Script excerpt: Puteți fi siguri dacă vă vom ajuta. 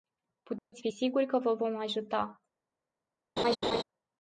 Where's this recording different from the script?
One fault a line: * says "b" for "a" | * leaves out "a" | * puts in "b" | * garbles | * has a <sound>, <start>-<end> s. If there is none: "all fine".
* has a dropout, 0.6-0.7 s
* says "că" for "dacă"
* has a laugh, 3.4-3.8 s